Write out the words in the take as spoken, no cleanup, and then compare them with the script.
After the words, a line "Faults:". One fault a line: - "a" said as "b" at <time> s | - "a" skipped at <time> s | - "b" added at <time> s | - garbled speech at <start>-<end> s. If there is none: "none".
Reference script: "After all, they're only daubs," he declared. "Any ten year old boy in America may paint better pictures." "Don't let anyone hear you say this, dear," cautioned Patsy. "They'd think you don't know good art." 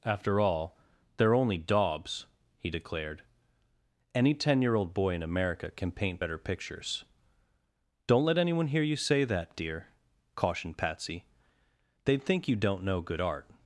"After all, they're only daubs," he declared. "Any ten year old boy in America can paint better pictures." "Don't let anyone hear you say that, dear," cautioned Patsy. "They'd think you don't know good art."
Faults:
- "may" said as "can" at 5.7 s
- "this" said as "that" at 9.2 s